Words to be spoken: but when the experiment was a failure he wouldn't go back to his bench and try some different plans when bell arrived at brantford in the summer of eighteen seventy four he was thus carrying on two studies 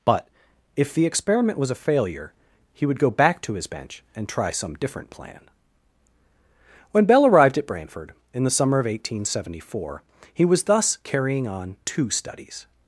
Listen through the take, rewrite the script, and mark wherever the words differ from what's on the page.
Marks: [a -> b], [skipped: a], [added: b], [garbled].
but [when -> if] the experiment was a failure he [wouldn't -> would] go back to his bench and try some different [plans -> plan] when bell arrived at brantford in the summer of eighteen seventy four he was thus carrying on two studies